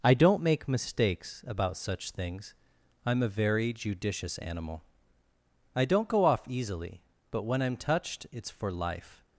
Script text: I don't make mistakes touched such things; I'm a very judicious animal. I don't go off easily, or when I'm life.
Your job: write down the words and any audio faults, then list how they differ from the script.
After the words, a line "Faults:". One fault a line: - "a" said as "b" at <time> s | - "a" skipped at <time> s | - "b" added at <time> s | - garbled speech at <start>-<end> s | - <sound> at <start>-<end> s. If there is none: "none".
I don't make mistakes about such things; I'm a very judicious animal. I don't go off easily, but when I'm touched, it's for life.
Faults:
- "touched" said as "about" at 1.5 s
- "or" said as "but" at 7.3 s
- "touched it's for" added at 7.8 s